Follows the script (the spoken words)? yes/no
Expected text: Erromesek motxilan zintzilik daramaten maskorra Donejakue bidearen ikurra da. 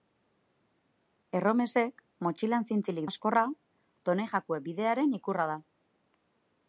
no